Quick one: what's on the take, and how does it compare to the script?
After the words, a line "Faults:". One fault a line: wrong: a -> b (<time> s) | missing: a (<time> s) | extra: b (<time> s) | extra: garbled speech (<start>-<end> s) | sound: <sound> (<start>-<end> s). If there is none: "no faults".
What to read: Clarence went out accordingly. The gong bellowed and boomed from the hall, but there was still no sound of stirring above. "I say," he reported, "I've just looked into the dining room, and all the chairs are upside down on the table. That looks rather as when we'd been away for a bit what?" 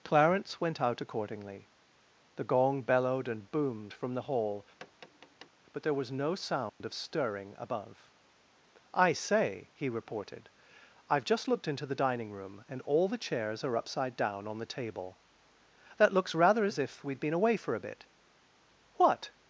Clarence went out accordingly. The gong bellowed and boomed from the hall, but there was no sound of stirring above. "I say," he reported, "I've just looked into the dining room, and all the chairs are upside down on the table. That looks rather as if we'd been away for a bit what?"
Faults:
sound: tap (4.8-5.5 s)
missing: still (6.1 s)
sound: dropout (6.7-6.8 s)
wrong: when -> if (16.8 s)